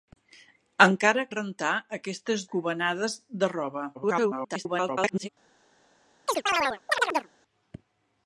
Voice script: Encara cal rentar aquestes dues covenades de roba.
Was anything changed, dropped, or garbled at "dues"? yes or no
yes